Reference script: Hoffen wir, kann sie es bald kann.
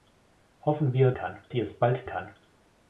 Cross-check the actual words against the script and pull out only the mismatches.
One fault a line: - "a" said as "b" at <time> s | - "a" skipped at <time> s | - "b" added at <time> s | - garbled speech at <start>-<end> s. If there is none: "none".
none